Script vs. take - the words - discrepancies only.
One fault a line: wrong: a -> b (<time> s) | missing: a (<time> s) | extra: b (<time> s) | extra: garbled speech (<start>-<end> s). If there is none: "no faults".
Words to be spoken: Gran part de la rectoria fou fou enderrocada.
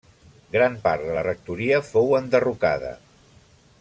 missing: fou (2.1 s)